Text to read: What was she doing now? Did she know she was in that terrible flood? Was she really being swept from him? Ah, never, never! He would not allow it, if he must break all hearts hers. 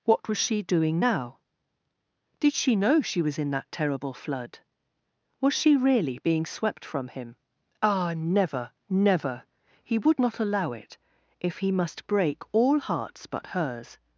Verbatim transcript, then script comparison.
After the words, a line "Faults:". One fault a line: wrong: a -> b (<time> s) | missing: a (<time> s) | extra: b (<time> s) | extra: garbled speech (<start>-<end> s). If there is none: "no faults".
What was she doing now? Did she know she was in that terrible flood? Was she really being swept from him? Ah, never, never! He would not allow it, if he must break all hearts but hers.
Faults:
extra: but (13.3 s)